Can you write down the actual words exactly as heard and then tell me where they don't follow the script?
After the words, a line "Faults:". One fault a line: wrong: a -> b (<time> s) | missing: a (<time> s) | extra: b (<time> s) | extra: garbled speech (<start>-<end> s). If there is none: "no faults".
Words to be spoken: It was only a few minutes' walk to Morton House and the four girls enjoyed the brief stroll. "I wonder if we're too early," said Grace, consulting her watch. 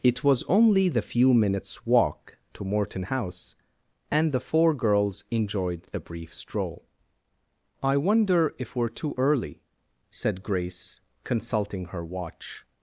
It was only the few minutes' walk to Morton House and the four girls enjoyed the brief stroll. "I wonder if we're too early," said Grace, consulting her watch.
Faults:
wrong: a -> the (0.9 s)